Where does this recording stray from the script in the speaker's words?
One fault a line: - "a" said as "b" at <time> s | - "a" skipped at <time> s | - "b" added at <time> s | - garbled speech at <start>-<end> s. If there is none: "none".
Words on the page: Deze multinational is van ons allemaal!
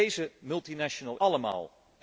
- "is van ons" skipped at 1.2 s